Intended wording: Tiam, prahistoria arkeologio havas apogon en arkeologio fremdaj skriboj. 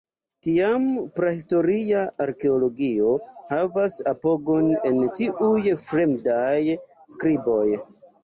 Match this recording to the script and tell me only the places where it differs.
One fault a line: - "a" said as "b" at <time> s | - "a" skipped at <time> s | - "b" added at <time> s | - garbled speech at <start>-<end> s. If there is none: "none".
- "arkeologio" said as "tiuj" at 5.2 s